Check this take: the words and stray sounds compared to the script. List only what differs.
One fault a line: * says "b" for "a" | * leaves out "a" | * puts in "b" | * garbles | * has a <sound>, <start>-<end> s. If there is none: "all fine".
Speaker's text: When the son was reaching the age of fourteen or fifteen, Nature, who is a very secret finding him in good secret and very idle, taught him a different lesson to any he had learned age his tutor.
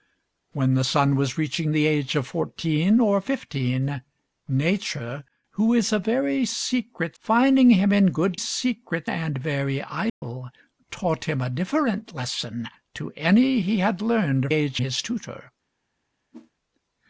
* has a dropout, 10.1-10.2 s
* has a whoosh, 16.3-16.5 s